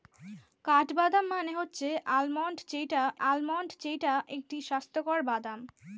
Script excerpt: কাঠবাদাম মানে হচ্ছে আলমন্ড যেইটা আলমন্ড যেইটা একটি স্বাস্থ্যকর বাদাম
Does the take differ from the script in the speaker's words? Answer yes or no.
no